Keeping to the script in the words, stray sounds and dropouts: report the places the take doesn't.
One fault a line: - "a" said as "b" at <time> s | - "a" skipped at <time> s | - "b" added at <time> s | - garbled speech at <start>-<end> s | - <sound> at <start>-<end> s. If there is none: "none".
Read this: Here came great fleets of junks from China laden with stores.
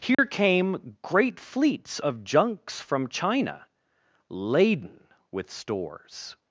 - dropout at 0.1-0.2 s